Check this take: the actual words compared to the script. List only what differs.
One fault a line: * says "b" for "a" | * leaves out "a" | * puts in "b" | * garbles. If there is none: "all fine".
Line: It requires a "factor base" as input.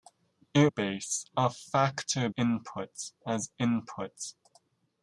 * says "base" for "requires"
* says "input" for "base"